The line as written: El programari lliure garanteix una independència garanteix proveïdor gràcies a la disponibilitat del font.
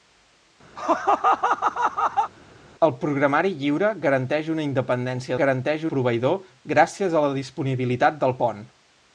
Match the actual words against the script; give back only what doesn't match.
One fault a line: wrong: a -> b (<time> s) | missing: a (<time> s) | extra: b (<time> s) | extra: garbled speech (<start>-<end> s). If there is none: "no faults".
no faults